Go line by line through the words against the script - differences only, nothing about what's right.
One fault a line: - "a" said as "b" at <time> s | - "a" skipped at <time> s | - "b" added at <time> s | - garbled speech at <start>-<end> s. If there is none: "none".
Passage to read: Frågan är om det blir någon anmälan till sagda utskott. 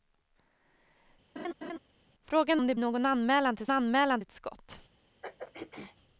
- "är" skipped at 2.6 s
- "blir" skipped at 2.7 s
- "sagda" said as "anmälan" at 3.7 s